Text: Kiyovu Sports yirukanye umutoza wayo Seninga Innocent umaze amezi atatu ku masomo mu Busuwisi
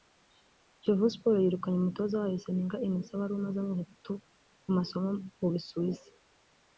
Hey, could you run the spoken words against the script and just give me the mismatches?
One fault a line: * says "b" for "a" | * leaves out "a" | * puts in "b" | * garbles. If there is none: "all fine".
* puts in "wari"